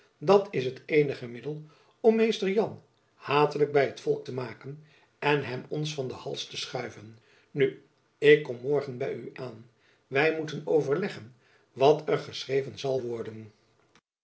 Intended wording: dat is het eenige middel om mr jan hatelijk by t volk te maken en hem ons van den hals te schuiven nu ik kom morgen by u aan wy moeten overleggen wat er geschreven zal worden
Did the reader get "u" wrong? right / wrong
right